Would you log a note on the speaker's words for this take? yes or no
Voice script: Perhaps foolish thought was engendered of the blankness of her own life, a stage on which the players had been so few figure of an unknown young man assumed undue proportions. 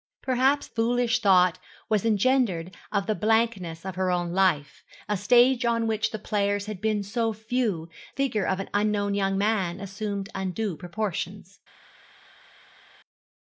no